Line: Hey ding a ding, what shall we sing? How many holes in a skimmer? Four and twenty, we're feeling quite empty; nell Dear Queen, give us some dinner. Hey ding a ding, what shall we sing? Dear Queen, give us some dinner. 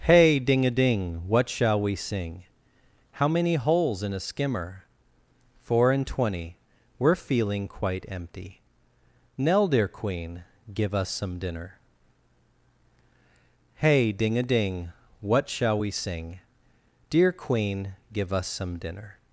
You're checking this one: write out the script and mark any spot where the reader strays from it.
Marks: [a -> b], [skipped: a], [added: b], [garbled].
Hey ding a ding, what shall we sing? How many holes in a skimmer? Four and twenty, we're feeling quite empty; nell Dear Queen, give us some dinner. Hey ding a ding, what shall we sing? Dear Queen, give us some dinner.